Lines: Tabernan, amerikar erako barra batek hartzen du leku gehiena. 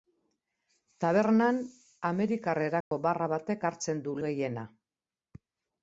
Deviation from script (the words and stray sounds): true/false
true